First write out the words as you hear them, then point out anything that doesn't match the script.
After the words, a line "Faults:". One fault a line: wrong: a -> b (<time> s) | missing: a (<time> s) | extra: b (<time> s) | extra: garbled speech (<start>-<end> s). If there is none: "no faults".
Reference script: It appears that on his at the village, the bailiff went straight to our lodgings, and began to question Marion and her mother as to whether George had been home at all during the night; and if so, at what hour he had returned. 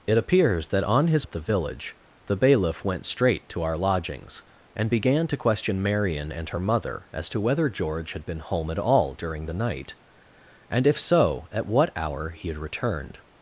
It appears that on his at the village, the bailiff went straight to our lodgings, and began to question Marion and her mother as to whether George had been home at all during the night; and if so, at what hour he had returned.
Faults:
no faults